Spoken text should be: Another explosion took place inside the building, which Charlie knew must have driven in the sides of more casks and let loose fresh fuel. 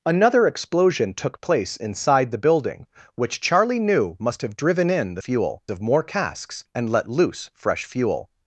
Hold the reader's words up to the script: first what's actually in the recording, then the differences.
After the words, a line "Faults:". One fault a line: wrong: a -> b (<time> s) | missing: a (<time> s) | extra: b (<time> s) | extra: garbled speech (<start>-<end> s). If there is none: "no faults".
Another explosion took place inside the building, which Charlie knew must have driven in the fuel of more casks and let loose fresh fuel.
Faults:
wrong: sides -> fuel (5.2 s)